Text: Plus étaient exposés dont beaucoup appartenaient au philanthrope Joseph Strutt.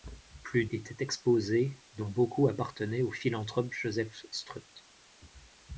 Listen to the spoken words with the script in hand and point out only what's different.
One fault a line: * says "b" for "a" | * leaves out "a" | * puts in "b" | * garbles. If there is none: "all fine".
all fine